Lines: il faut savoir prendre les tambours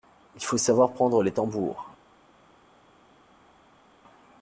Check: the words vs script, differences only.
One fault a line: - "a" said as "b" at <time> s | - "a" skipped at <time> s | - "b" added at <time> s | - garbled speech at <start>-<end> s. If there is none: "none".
none